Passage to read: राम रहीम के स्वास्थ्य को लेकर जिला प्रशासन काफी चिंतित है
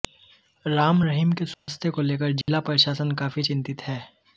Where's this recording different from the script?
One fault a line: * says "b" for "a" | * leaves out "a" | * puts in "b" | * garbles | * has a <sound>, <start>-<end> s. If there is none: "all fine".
* has a dropout, 1.5-1.7 s
* has a dropout, 2.4-2.5 s